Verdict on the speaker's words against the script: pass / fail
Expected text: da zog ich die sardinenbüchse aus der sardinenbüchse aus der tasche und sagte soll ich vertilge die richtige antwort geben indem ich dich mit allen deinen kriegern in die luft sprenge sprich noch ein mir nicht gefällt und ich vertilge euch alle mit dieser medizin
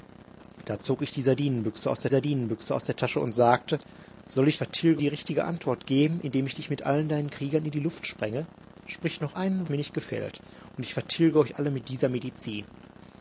pass